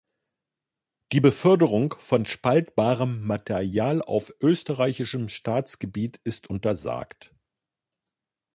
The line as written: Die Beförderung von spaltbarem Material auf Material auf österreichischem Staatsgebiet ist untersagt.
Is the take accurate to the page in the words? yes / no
no